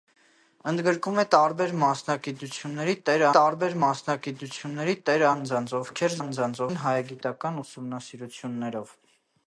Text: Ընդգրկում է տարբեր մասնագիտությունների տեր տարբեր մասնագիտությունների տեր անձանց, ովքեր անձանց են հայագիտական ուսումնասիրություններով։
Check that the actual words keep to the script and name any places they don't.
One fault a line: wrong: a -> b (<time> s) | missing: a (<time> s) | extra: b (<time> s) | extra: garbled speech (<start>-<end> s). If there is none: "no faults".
no faults